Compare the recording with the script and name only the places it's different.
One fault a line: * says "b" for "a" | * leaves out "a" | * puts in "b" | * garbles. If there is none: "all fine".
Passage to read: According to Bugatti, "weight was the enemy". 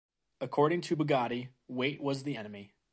all fine